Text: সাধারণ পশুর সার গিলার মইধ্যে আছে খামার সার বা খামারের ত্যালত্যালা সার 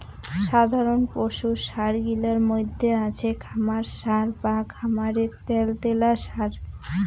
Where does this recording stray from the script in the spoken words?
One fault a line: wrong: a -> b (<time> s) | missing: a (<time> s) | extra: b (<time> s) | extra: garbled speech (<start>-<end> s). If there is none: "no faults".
no faults